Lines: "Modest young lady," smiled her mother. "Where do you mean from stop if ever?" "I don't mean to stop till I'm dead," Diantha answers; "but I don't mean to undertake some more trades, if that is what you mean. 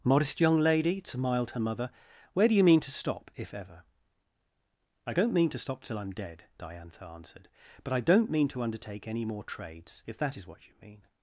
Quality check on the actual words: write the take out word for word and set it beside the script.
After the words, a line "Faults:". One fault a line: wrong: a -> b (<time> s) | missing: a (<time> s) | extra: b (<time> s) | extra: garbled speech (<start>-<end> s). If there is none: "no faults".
"Modest young lady," smiled her mother. "Where do you mean to stop if ever?" "I don't mean to stop till I'm dead," Diantha answered; "but I don't mean to undertake any more trades, if that is what you mean.
Faults:
wrong: from -> to (2.8 s)
wrong: answers -> answered (7.0 s)
wrong: some -> any (9.1 s)